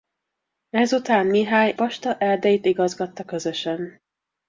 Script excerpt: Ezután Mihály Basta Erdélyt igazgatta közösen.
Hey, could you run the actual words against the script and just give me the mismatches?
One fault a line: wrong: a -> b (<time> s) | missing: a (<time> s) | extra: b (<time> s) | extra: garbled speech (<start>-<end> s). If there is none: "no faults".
no faults